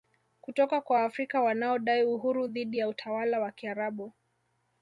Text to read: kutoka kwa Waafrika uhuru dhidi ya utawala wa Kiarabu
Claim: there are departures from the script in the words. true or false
true